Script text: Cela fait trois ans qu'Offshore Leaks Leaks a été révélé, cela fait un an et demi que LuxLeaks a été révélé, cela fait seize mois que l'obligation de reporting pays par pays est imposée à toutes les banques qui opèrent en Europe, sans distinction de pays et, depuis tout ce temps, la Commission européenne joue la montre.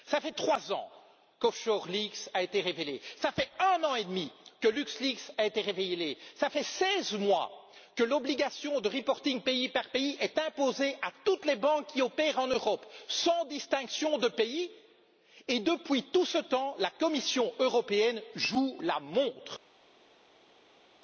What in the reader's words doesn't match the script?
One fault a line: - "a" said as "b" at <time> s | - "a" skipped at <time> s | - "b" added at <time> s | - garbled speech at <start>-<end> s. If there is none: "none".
- "Leaks" skipped at 2.3 s